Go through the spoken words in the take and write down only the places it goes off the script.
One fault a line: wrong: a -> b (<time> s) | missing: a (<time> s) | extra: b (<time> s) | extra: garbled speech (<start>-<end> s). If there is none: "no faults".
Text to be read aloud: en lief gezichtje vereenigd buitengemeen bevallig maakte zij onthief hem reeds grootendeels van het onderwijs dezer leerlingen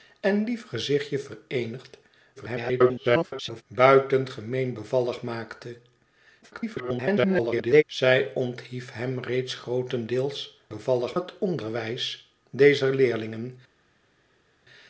extra: garbled speech (2.4-3.6 s)
extra: garbled speech (6.4-7.8 s)
wrong: van -> bevallig (10.7 s)